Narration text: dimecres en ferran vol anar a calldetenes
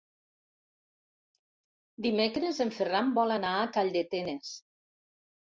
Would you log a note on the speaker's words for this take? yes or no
no